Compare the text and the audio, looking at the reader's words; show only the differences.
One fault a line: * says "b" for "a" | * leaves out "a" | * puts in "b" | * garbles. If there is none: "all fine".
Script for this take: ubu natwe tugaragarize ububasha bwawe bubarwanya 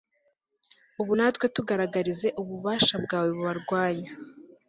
all fine